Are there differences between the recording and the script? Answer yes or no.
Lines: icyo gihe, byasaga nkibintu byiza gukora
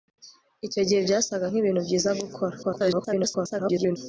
yes